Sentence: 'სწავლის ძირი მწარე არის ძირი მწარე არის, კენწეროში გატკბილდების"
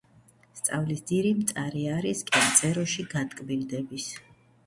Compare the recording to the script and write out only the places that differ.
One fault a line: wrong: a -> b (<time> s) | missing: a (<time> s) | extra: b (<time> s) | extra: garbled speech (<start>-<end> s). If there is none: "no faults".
missing: ძირი მწარე არის (2.2 s)